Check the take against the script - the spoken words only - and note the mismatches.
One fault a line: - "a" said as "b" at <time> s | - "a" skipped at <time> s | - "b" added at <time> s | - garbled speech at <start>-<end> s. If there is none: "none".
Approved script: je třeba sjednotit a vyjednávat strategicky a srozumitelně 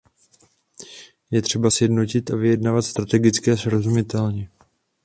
none